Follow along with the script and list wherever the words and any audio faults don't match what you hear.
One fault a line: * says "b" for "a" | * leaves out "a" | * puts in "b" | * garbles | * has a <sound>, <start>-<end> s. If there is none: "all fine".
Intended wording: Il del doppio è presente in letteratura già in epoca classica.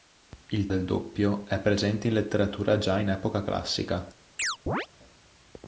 * has a chirp, 4.4-4.9 s